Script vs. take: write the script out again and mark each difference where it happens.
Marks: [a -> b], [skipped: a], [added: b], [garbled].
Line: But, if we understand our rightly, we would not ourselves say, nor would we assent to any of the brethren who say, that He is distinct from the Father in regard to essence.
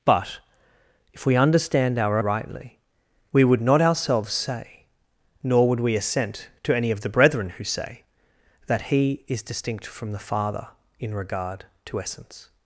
But, if we understand our rightly, we would not ourselves say, nor would we assent to any of the brethren who say, that He is distinct from the Father in regard to essence.